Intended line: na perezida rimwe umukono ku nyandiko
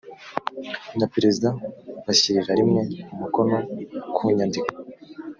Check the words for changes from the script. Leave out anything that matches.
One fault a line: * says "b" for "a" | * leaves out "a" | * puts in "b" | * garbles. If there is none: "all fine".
* puts in "bashyirira"